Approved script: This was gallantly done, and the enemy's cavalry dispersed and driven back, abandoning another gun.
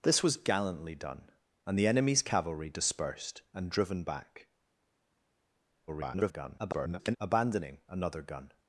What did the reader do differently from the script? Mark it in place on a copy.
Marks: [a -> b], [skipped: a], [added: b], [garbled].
This was gallantly done, and the enemy's cavalry dispersed and driven back, [garbled] abandoning another gun.